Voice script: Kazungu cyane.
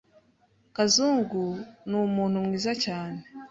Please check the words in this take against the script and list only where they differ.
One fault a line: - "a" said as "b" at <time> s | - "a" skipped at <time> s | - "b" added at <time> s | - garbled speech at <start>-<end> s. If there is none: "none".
- "numuntu mwiza" added at 1.9 s